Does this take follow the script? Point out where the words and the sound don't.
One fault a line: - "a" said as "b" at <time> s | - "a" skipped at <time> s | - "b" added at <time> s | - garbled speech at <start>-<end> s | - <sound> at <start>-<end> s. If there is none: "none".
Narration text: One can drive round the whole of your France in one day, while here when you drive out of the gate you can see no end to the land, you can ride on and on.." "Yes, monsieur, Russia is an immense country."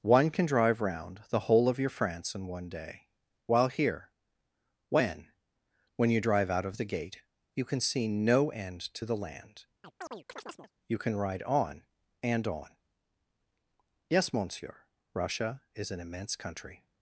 - "when" added at 6.0 s
- chirp at 9.8-10.7 s